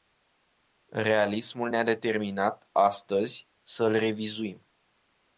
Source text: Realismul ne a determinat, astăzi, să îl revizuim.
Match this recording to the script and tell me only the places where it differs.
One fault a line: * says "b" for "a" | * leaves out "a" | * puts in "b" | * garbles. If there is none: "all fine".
all fine